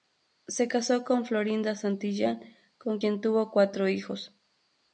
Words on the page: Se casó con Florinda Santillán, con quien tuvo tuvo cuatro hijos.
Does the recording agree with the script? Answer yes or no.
no